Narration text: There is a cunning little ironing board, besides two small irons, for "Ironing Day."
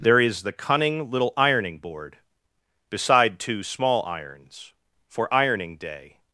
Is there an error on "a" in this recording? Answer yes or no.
yes